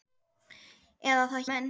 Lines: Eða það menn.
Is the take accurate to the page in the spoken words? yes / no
yes